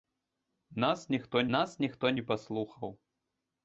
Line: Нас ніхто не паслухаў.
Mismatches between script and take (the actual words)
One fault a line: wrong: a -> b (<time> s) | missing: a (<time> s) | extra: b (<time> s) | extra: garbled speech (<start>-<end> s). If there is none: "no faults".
extra: нас ніхто (1.6 s)